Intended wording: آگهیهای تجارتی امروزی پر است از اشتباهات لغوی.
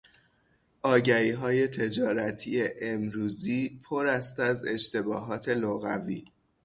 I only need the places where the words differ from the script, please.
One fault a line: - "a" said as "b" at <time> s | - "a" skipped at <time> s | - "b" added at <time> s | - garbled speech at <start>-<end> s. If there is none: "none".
none